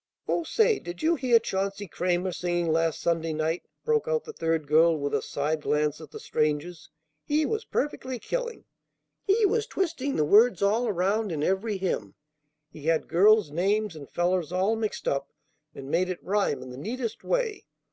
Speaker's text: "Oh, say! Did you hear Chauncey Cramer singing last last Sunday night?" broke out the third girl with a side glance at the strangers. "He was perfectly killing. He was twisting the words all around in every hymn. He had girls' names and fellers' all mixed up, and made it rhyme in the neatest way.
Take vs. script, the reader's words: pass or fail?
fail